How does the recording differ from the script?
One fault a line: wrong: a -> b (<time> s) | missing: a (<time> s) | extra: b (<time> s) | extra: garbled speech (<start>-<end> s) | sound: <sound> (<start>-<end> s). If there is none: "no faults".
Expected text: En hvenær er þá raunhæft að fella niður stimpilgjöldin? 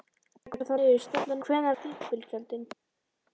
missing: hvenær (0.6 s)
wrong: raunhæft -> niður (0.8 s)
wrong: niður -> hvenær (1.4 s)